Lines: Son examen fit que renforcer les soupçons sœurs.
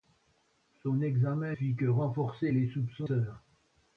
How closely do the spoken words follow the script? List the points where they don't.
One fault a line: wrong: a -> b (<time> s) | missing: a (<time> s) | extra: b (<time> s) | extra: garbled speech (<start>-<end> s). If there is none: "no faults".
no faults